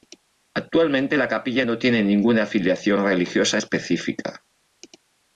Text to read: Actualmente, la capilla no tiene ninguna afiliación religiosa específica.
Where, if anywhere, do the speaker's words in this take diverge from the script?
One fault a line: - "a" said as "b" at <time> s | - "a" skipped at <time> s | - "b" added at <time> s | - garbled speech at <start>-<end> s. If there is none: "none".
none